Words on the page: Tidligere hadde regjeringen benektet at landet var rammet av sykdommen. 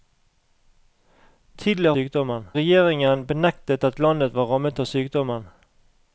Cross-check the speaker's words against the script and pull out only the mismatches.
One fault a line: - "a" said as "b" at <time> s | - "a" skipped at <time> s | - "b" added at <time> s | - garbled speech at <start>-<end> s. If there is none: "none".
- "hadde" said as "sykdommen" at 1.9 s